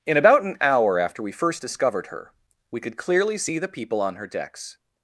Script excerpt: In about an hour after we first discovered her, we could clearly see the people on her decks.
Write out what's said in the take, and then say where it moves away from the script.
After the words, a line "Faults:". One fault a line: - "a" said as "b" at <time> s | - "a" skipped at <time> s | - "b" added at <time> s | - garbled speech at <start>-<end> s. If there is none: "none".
In about an hour after we first discovered her, we could clearly see the people on her decks.
Faults:
none